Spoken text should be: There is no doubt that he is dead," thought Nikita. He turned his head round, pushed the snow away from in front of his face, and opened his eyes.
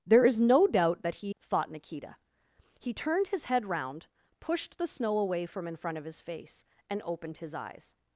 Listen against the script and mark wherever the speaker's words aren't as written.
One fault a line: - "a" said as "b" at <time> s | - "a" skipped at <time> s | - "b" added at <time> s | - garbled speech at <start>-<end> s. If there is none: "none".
- "is dead" skipped at 1.4 s